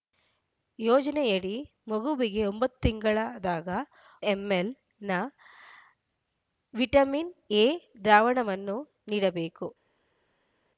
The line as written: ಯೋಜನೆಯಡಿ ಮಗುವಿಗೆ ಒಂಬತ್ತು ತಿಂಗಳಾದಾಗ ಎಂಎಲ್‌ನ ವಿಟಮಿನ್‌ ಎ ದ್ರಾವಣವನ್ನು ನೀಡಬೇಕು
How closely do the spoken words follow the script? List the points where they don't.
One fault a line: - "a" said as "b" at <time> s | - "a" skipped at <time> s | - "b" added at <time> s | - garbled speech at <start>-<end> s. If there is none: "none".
none